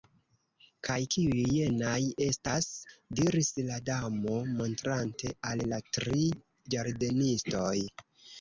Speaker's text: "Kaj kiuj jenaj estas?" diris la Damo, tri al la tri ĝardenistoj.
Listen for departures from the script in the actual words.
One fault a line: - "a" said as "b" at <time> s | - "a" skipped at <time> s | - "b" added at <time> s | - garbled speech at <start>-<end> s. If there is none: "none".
- "tri" said as "montrante" at 4.6 s